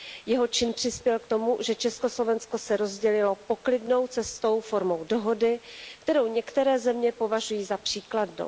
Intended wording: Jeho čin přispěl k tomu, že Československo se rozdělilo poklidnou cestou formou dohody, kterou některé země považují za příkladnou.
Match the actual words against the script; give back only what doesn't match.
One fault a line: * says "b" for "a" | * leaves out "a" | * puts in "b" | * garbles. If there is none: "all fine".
all fine